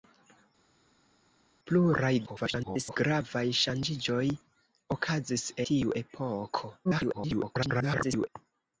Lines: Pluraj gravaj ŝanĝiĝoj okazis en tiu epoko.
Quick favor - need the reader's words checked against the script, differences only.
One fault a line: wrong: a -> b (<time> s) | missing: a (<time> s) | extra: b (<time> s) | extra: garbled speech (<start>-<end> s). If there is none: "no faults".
extra: garbled speech (2.3-3.0 s)
missing: en (5.5 s)
extra: garbled speech (6.8-8.3 s)